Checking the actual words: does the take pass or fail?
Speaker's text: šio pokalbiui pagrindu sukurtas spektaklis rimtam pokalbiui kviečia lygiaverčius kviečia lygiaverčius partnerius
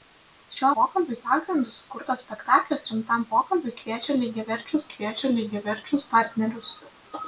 pass